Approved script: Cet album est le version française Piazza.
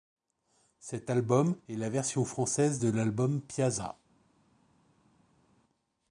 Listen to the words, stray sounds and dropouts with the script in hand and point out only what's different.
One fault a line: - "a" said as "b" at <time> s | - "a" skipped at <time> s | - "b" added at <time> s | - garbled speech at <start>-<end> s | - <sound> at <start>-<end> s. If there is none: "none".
- "le" said as "la" at 1.8 s
- "de l'album" added at 2.8 s